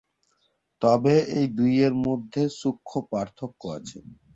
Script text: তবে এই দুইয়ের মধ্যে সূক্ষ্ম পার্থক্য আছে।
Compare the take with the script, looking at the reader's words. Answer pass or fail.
pass